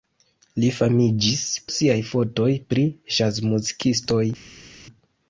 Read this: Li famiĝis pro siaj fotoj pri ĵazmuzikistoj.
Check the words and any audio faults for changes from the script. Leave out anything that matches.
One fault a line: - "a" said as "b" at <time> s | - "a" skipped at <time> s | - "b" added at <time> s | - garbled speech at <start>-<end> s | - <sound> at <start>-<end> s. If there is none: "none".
- "pro" skipped at 1.4 s